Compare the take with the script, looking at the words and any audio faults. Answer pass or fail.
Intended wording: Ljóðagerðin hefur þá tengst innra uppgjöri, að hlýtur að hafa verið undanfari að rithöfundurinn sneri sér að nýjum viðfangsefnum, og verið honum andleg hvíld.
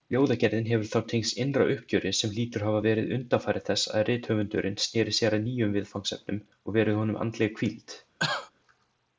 fail